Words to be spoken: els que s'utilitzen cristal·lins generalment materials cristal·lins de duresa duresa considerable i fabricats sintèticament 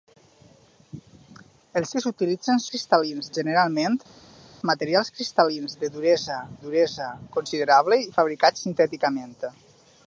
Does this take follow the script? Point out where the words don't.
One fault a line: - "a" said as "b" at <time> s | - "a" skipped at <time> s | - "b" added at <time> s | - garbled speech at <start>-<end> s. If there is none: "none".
none